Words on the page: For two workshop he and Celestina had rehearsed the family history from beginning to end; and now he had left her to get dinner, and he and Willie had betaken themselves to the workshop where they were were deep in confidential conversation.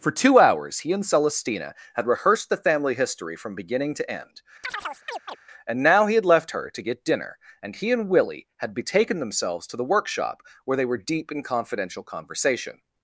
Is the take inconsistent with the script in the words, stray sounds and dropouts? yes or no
yes